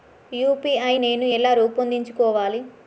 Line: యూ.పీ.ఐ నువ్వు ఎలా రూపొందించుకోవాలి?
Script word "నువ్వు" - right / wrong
wrong